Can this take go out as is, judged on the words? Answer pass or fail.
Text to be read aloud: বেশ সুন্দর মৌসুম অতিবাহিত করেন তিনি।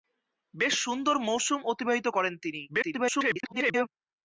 fail